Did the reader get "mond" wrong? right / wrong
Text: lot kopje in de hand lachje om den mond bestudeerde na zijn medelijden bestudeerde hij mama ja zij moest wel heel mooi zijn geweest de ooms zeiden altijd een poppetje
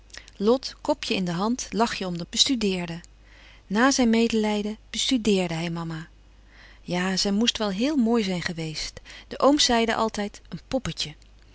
wrong